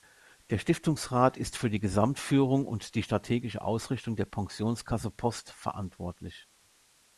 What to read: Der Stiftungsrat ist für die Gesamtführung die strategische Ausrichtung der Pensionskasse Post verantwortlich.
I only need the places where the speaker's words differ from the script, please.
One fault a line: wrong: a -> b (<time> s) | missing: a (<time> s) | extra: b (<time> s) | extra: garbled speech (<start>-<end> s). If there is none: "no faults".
extra: und (2.6 s)